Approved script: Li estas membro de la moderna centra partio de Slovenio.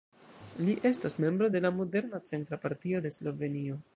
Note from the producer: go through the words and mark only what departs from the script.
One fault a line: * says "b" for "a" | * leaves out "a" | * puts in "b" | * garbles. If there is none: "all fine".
all fine